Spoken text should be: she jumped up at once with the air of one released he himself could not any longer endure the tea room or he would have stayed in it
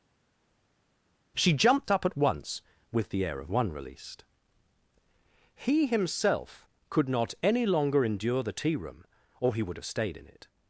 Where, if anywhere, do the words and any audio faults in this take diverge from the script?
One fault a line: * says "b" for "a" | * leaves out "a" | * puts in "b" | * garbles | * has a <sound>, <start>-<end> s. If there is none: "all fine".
all fine